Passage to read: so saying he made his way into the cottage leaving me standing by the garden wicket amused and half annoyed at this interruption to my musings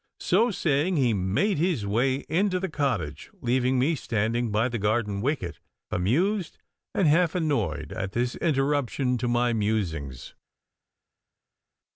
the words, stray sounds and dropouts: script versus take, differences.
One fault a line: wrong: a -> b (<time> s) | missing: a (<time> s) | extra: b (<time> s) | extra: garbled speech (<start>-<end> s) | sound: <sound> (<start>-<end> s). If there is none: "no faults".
no faults